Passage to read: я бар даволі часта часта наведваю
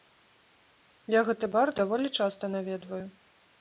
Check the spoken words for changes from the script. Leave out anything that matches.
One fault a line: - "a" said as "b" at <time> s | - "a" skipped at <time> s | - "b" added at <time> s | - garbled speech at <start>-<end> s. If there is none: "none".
- "гэты" added at 1.3 s
- "часта" skipped at 2.5 s